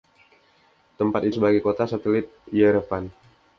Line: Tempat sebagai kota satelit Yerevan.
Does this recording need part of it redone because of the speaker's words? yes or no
no